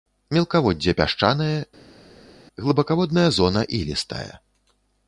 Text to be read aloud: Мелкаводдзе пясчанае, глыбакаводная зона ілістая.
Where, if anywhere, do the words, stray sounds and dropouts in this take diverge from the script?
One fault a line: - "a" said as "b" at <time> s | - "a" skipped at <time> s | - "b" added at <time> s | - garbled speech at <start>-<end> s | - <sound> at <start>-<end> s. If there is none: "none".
none